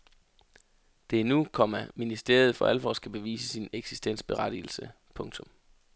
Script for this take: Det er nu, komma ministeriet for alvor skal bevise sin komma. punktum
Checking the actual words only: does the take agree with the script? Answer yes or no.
no